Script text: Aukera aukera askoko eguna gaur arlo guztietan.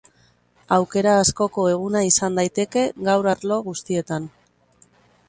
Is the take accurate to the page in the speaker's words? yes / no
no